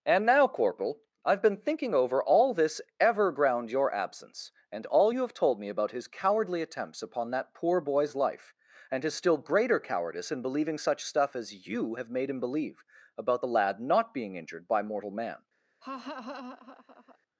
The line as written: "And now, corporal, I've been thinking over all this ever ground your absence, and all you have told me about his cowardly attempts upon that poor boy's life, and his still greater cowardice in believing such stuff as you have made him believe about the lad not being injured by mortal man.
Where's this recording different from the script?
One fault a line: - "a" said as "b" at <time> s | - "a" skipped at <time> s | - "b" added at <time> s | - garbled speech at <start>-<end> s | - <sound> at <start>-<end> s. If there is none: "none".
- laugh at 15.8-17.2 s